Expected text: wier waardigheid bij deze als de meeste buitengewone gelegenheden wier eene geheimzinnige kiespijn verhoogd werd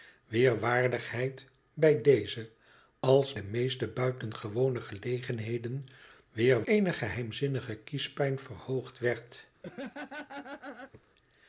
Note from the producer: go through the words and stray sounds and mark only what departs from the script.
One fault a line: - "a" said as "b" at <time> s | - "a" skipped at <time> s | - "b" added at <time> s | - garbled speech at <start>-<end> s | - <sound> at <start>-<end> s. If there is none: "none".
- laugh at 9.6-11.1 s